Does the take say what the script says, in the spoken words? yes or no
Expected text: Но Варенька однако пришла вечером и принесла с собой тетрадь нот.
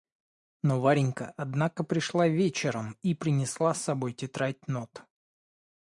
yes